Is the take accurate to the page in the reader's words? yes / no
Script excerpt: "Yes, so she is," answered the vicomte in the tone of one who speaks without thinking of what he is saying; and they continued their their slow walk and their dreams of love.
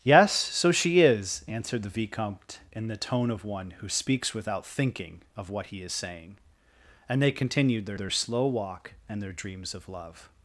yes